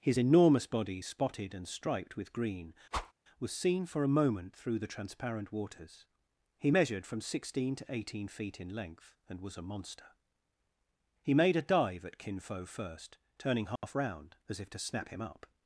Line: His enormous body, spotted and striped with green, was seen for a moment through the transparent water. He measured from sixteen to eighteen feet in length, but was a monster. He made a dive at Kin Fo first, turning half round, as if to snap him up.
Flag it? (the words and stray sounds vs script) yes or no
yes